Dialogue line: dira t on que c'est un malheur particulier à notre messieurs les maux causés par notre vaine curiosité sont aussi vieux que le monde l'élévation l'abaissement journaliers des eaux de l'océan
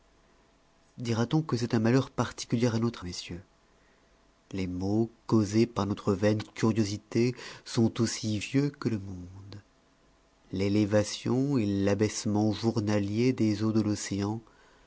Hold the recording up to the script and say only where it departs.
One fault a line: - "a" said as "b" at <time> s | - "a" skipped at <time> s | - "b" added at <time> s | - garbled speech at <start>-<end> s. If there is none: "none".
none